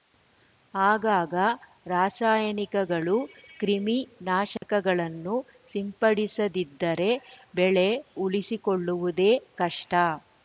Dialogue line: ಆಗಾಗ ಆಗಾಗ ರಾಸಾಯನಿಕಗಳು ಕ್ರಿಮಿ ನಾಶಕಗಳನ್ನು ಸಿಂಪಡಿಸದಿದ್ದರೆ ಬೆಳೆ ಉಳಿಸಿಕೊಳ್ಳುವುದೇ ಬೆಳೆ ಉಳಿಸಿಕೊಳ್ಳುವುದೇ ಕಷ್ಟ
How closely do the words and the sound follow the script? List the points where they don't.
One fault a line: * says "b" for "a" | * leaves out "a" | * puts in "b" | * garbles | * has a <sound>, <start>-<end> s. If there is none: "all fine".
* leaves out "ಆಗಾಗ"
* has a dropout, 4.6-4.6 s
* leaves out "ಬೆಳೆ ಉಳಿಸಿಕೊಳ್ಳುವುದೇ"